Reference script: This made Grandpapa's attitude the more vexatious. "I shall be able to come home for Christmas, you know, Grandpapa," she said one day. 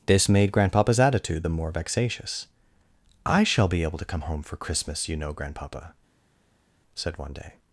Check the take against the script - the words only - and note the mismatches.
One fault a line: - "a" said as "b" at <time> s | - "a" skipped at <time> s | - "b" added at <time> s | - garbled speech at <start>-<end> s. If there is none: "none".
- "she" skipped at 5.9 s